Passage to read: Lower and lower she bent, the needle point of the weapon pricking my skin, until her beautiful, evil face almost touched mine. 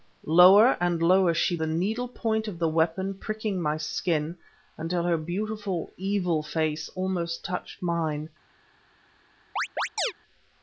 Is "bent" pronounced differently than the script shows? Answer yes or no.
yes